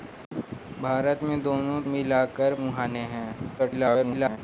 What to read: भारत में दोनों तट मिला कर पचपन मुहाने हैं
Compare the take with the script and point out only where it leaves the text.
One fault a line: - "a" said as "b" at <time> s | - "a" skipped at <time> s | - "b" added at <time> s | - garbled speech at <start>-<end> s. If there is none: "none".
- "तट" skipped at 1.8 s
- "पचपन" skipped at 2.5 s
- garbled speech at 3.6-4.4 s